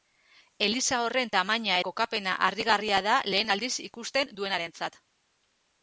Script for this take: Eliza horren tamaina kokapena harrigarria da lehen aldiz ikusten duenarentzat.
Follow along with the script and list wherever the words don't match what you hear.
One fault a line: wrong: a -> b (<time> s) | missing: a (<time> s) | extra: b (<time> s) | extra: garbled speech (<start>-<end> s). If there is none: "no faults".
no faults